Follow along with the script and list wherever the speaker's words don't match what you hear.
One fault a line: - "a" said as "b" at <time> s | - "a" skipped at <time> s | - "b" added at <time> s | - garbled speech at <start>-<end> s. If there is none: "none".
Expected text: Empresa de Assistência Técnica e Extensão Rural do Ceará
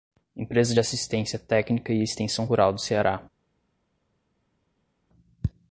none